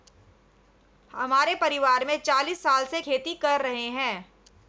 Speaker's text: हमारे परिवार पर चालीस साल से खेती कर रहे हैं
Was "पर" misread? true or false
true